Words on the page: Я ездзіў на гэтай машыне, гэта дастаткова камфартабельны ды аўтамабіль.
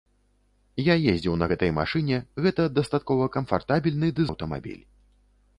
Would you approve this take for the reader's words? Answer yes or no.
yes